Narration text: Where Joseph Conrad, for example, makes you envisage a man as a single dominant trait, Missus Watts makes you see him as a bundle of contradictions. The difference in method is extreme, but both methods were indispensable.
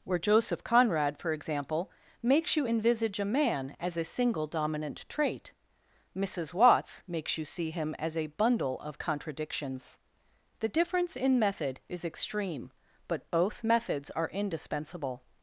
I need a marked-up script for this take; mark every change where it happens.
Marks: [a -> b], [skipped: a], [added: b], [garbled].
Where Joseph Conrad, for example, makes you envisage a man as a single dominant trait, Missus Watts makes you see him as a bundle of contradictions. The difference in method is extreme, but both methods [were -> are] indispensable.